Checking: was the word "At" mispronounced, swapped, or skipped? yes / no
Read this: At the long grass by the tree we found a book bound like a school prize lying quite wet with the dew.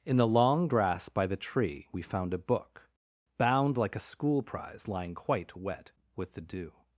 yes